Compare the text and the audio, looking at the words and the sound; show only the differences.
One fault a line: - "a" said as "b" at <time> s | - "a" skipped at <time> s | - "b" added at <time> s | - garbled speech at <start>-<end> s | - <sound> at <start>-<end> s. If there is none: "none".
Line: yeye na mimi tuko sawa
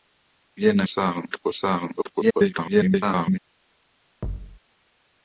- "mimi" said as "sawa" at 0.9 s
- garbled speech at 2.0-3.4 s
- thud at 4.2-4.6 s